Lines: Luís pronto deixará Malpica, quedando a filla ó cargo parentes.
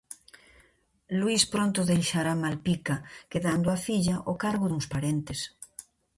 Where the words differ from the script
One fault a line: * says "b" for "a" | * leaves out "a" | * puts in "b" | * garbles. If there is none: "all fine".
* puts in "duns"